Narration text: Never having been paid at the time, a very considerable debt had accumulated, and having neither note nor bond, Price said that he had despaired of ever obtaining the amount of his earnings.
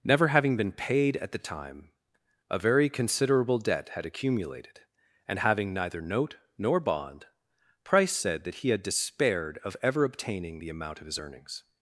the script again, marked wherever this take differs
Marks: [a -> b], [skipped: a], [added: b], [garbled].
Never having been paid at the time, a very considerable debt had accumulated, and having neither note nor bond, Price said that he had despaired of ever obtaining the amount of his earnings.